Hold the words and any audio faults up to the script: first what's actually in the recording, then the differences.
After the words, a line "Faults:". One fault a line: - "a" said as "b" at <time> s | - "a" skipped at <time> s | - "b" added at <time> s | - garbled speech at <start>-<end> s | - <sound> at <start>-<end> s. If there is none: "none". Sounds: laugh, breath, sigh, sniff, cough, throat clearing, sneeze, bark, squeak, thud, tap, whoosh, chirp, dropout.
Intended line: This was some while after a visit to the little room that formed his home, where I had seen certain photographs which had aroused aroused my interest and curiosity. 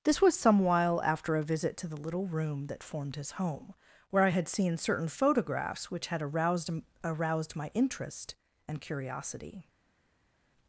This was some while after a visit to the little room that formed his home, where I had seen certain photographs which had aroused aroused my interest and curiosity.
Faults:
none